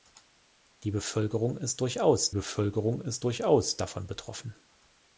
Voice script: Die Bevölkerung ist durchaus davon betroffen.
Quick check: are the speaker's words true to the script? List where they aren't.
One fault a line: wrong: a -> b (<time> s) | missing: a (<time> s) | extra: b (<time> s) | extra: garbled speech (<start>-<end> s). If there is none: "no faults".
extra: Bevölkerung ist durchaus (2.3 s)